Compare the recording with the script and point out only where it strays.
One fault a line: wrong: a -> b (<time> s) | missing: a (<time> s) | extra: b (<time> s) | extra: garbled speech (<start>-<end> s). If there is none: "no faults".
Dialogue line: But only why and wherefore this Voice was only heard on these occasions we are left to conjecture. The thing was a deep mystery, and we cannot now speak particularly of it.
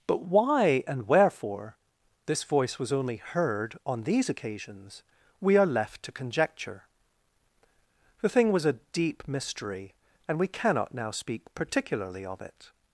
missing: only (0.2 s)